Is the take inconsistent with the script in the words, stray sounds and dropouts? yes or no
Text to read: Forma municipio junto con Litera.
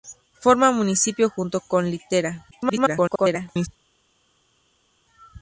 yes